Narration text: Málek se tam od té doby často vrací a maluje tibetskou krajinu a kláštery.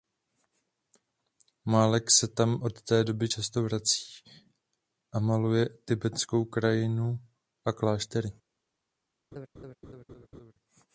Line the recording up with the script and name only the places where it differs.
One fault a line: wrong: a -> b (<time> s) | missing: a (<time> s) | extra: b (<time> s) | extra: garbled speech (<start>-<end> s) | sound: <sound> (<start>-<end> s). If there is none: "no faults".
sound: laugh (9.3-10.5 s)